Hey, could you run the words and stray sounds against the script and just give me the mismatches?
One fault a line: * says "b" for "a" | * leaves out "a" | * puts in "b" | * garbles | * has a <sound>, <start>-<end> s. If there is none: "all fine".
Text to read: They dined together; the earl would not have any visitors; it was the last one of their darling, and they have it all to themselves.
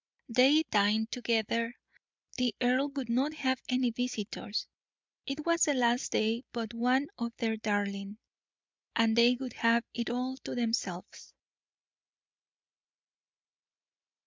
* puts in "day but"
* puts in "would"